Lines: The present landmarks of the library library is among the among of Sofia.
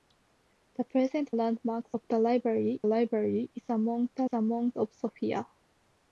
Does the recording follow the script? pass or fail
pass